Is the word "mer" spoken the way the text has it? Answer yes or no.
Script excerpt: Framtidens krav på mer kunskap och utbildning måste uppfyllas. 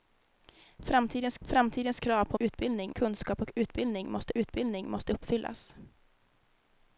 no